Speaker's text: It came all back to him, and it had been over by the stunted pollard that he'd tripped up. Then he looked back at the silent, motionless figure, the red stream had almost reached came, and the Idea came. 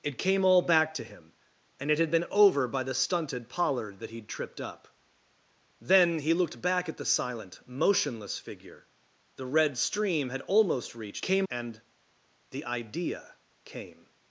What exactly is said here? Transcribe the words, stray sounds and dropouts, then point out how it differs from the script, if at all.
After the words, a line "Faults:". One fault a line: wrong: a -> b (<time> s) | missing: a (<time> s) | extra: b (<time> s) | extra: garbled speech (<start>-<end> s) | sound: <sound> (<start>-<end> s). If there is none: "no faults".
It came all back to him, and it had been over by the stunted pollard that he'd tripped up. Then he looked back at the silent, motionless figure, the red stream had almost reached came, and the Idea came.
Faults:
no faults